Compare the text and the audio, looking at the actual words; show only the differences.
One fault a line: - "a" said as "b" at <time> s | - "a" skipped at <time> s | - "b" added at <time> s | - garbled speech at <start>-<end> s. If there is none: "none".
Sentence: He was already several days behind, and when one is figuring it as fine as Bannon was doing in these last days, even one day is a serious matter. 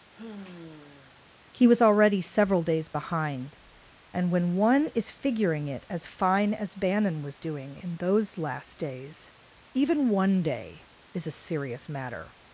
- "these" said as "those" at 8.0 s